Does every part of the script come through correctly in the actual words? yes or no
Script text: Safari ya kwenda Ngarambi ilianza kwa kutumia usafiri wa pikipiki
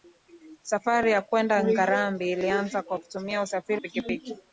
no